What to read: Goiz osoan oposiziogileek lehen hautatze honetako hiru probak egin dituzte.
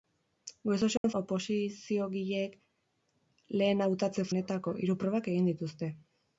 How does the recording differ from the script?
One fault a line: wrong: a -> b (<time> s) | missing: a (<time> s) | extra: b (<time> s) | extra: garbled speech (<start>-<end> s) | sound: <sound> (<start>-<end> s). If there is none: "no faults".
sound: dropout (1.0-1.0 s)